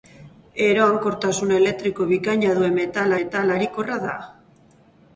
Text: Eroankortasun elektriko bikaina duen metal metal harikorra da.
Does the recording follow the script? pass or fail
pass